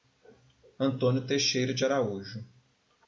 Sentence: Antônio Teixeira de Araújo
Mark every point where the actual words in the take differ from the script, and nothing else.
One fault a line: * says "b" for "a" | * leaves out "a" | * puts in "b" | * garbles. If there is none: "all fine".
all fine